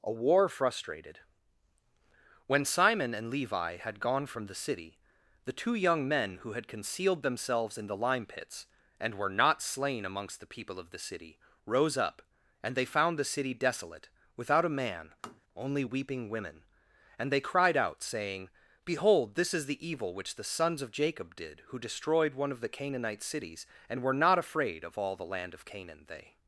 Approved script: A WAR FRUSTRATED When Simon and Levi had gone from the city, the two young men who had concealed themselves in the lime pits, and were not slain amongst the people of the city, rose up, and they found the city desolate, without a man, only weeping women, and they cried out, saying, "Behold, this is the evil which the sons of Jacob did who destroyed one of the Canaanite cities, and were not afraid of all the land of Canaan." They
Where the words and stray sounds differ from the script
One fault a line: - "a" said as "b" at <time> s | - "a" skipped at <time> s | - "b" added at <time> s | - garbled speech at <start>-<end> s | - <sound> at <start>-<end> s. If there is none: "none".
- tap at 15.2-15.4 s